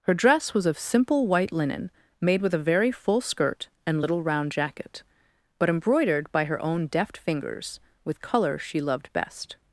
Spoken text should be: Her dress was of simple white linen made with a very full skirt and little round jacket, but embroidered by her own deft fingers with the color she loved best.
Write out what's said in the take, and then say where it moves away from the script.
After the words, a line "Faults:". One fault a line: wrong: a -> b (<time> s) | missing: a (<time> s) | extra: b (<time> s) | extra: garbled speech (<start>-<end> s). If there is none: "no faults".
Her dress was of simple white linen made with a very full skirt and little round jacket, but embroidered by her own deft fingers with color she loved best.
Faults:
missing: the (8.2 s)